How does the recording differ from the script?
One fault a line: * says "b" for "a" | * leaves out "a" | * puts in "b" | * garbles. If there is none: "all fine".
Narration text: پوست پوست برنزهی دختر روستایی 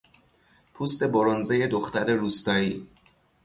* leaves out "پوست"